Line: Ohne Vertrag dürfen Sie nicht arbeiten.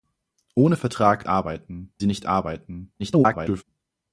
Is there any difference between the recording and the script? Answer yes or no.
yes